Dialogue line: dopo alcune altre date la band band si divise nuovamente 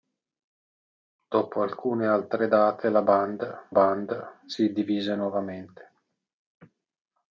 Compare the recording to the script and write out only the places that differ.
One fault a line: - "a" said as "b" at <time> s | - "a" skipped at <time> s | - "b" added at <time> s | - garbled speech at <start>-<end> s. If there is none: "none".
none